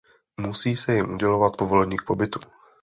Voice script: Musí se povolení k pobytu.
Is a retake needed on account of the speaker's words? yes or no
yes